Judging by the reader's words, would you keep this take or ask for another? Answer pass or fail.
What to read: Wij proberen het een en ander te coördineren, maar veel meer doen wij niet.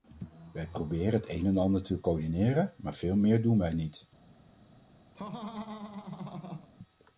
pass